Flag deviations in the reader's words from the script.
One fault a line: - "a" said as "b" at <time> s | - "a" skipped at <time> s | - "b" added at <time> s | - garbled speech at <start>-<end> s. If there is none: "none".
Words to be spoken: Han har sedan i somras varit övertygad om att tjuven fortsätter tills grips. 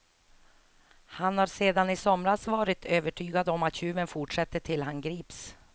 - "han" added at 4.8 s